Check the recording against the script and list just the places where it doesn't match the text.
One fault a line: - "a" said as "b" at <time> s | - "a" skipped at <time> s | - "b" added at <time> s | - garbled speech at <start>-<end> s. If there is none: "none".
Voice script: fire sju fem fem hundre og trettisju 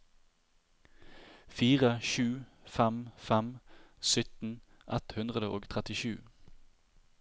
- "sytten ett" added at 4.1 s